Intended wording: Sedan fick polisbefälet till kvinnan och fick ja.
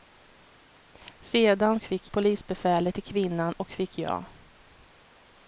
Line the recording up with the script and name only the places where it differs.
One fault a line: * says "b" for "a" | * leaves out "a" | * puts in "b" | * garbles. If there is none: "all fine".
all fine